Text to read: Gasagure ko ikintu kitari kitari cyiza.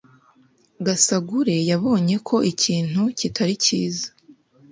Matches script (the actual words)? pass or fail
fail